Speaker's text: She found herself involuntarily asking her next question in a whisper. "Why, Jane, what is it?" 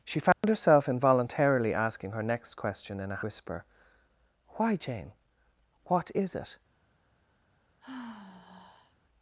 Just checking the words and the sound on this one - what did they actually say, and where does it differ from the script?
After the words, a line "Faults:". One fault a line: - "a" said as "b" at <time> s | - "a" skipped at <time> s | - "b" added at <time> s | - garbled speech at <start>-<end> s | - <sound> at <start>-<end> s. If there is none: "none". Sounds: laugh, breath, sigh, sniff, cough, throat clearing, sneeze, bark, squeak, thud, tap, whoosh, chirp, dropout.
She found herself involuntarily asking her next question in a whisper. "Why, Jane, what is it?"
Faults:
- dropout at 0.3-0.4 s
- sigh at 7.8-9.0 s